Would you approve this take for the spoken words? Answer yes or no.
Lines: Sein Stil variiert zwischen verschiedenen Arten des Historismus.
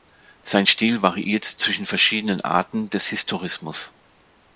yes